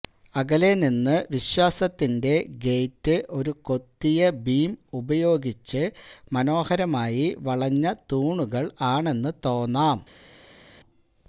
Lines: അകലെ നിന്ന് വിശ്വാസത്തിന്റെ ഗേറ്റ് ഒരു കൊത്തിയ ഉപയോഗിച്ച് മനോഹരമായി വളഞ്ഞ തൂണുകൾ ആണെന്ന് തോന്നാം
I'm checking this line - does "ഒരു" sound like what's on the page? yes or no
yes